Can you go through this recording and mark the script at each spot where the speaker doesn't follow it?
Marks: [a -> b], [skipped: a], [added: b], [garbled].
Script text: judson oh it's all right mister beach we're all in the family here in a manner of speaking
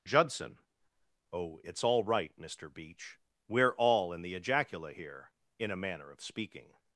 judson oh it's all right mister beach we're all in the [family -> ejacula] here in a manner of speaking